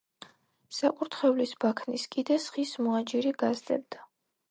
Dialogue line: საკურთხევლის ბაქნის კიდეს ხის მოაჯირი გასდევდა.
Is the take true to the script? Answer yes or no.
yes